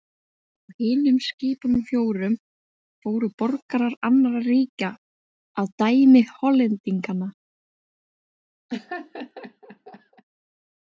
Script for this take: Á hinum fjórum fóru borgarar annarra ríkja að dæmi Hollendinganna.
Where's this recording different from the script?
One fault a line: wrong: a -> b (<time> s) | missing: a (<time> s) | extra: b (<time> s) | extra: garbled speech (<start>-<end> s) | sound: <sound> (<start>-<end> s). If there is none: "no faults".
extra: skipunum (1.3 s)
sound: laugh (8.7-10.2 s)